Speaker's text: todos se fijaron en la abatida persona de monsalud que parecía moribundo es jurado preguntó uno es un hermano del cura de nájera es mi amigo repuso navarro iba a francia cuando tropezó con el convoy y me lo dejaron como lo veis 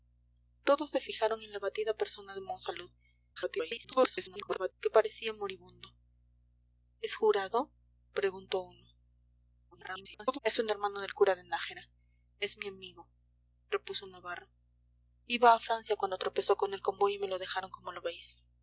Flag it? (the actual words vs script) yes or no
yes